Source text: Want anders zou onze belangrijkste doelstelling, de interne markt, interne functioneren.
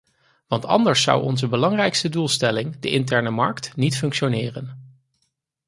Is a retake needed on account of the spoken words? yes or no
yes